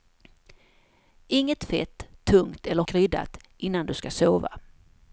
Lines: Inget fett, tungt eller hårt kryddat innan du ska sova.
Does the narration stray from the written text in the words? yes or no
yes